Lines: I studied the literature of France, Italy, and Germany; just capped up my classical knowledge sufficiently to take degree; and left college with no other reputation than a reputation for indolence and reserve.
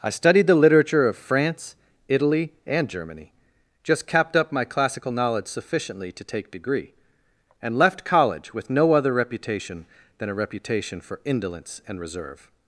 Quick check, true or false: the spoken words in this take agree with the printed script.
true